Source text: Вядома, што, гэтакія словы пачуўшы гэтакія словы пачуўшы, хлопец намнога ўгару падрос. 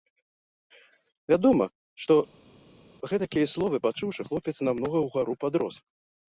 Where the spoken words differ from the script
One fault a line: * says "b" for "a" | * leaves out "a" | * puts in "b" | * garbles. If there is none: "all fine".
* leaves out "гэтакія словы пачуўшы"